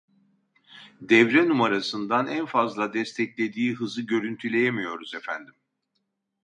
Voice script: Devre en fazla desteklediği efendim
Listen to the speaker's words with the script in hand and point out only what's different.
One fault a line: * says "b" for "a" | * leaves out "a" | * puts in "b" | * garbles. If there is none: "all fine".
* puts in "numarasından"
* puts in "hızı görüntüleyemiyoruz"